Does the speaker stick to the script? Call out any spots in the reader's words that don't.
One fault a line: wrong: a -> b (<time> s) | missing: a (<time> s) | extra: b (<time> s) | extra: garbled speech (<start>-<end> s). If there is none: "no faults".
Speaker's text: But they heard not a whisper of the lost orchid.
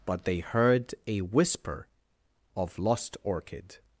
missing: not (0.9 s)
missing: the (2.8 s)